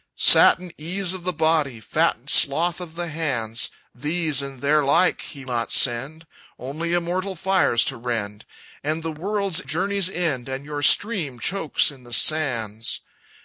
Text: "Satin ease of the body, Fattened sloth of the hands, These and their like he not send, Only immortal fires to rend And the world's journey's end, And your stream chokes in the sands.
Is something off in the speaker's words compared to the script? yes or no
no